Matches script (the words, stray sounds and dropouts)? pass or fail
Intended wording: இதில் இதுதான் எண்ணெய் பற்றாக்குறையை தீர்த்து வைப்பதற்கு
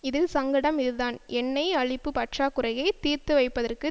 fail